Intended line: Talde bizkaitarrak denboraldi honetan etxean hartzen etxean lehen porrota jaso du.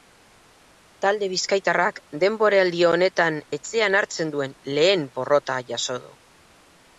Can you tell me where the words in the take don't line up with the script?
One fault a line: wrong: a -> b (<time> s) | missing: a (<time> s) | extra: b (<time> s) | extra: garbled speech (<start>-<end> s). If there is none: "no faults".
wrong: etxean -> duen (4.4 s)